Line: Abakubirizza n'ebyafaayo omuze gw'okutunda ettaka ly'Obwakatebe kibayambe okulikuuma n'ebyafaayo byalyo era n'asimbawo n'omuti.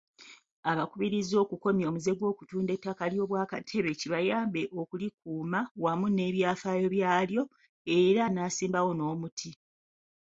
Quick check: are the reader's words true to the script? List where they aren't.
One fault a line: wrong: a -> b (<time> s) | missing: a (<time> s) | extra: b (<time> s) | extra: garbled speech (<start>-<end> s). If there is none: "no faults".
wrong: n'ebyafaayo -> okukomya (1.4 s)
extra: wamu (5.8 s)